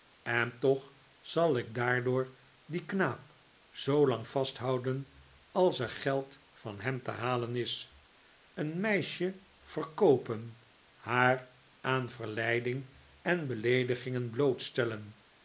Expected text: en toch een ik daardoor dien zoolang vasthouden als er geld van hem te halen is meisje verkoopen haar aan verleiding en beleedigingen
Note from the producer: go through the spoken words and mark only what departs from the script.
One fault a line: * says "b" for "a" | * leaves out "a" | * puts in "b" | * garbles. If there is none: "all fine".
* says "zal" for "een"
* puts in "knaap"
* puts in "een"